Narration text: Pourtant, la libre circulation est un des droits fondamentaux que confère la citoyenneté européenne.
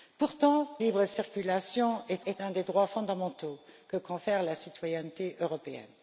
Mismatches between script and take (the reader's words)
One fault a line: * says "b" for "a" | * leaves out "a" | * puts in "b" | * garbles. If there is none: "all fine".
* leaves out "la"
* puts in "est"